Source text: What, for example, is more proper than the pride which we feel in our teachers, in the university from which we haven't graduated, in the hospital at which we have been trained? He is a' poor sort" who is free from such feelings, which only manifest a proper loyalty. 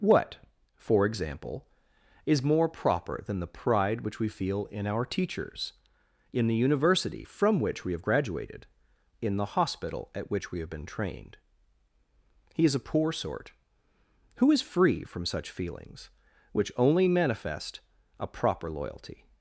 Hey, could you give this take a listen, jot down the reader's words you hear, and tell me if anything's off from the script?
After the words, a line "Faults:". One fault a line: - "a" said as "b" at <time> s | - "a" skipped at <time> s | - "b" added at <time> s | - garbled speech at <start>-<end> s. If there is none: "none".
What, for example, is more proper than the pride which we feel in our teachers, in the university from which we have graduated, in the hospital at which we have been trained? He is a' poor sort" who is free from such feelings, which only manifest a proper loyalty.
Faults:
- "haven't" said as "have" at 7.9 s